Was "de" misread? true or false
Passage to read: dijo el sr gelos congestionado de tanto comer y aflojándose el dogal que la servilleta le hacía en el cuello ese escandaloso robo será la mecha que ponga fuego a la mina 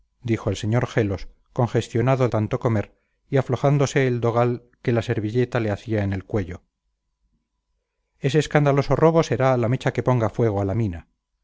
true